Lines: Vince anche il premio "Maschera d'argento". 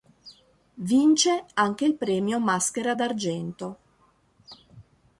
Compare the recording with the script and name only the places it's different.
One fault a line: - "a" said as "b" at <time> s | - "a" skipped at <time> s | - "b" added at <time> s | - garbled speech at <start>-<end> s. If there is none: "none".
none